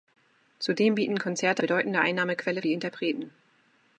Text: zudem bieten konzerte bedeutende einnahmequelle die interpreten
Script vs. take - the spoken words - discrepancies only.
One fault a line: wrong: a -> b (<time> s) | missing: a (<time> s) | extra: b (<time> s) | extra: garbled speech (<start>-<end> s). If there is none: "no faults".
no faults